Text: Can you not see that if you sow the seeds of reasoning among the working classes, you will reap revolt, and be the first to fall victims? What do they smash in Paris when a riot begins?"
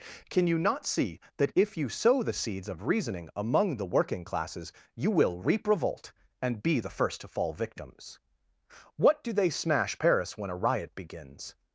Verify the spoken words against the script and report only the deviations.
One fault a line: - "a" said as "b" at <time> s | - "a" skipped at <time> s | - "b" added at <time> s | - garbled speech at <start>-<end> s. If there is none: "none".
- "in" skipped at 10.0 s